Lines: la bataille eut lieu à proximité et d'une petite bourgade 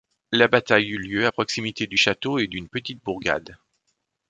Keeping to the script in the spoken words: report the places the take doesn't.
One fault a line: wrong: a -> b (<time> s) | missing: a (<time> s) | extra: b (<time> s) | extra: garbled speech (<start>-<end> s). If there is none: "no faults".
extra: du château (1.9 s)